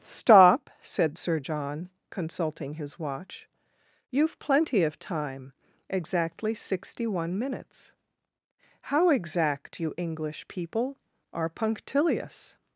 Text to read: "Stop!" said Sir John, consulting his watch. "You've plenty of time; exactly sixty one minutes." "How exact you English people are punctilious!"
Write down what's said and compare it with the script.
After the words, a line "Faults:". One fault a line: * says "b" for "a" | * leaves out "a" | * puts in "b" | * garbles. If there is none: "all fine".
"Stop!" said Sir John, consulting his watch. "You've plenty of time; exactly sixty one minutes." "How exact you English people are punctilious!"
Faults:
all fine